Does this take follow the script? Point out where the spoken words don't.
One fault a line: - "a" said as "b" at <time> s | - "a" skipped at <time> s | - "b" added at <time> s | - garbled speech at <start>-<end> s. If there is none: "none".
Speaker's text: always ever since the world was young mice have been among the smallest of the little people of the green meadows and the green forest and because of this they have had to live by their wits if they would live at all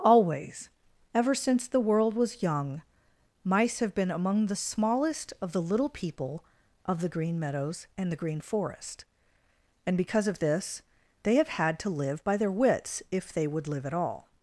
none